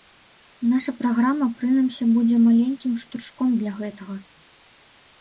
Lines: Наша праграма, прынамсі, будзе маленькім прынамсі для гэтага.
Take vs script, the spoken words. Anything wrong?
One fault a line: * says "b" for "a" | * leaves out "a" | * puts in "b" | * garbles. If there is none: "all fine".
* says "штуршком" for "прынамсі"